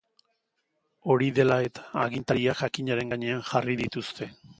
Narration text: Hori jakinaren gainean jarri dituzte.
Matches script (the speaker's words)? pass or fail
fail